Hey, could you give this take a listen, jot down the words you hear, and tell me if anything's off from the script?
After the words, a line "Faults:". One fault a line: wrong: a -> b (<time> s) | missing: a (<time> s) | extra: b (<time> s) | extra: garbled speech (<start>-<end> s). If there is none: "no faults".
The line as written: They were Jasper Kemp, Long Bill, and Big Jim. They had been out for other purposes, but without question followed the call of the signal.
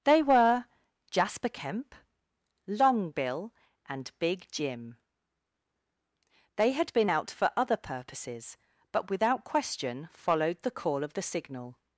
They were Jasper Kemp, Long Bill, and Big Jim. They had been out for other purposes, but without question followed the call of the signal.
Faults:
no faults